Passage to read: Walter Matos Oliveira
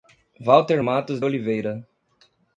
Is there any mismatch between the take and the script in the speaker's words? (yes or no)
no